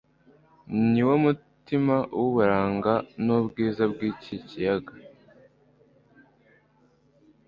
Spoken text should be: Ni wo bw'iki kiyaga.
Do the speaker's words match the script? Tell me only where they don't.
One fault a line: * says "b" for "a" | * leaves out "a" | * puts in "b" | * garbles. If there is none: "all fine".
* puts in "mutima w'uburanga n'ubwiza"